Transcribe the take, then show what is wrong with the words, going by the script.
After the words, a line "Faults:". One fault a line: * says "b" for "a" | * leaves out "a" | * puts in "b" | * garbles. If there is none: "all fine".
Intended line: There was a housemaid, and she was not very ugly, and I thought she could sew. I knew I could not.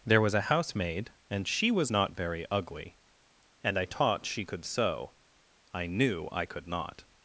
There was a housemaid, and she was not very ugly, and I taught she could sew. I knew I could not.
Faults:
* says "taught" for "thought"